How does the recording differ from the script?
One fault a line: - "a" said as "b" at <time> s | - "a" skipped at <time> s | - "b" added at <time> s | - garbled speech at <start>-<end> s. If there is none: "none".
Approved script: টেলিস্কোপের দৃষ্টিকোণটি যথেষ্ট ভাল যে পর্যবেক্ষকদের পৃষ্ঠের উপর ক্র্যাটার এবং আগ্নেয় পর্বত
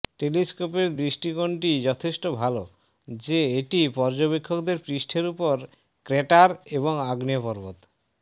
- "এটি" added at 3.6 s